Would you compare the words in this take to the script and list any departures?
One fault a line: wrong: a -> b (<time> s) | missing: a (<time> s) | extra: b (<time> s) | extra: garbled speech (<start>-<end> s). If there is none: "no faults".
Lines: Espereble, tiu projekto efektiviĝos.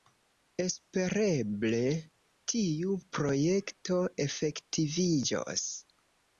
no faults